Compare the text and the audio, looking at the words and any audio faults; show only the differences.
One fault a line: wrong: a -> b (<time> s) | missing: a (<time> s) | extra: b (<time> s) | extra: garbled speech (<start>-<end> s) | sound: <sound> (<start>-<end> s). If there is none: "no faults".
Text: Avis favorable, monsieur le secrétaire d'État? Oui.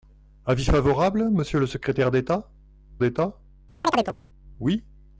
extra: d'État (3.0 s)
sound: chirp (3.8-4.2 s)